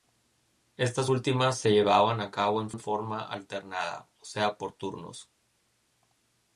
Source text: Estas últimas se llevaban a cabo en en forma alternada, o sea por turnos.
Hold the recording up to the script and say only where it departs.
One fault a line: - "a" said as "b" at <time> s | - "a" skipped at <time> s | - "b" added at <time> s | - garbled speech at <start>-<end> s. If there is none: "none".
none